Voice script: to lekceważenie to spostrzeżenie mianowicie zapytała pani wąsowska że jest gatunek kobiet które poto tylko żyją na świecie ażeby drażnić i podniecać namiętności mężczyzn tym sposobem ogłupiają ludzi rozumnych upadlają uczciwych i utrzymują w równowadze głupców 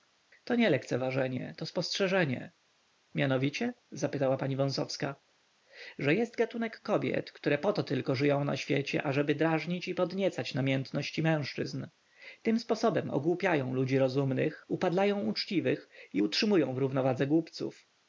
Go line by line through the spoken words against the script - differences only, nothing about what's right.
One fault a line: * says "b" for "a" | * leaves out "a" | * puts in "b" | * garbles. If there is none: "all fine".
* puts in "nie"